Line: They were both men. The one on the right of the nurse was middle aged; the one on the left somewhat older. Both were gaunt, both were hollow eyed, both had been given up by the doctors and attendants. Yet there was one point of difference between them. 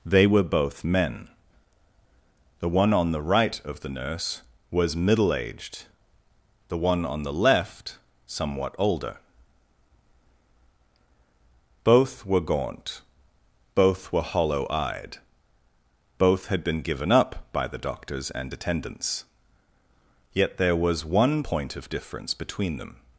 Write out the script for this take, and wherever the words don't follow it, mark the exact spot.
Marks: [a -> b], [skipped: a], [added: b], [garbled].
They were both men. The one on the right of the nurse was middle aged; the one on the left somewhat older. Both were gaunt, both were hollow eyed, both had been given up by the doctors and attendants. Yet there was one point of difference between them.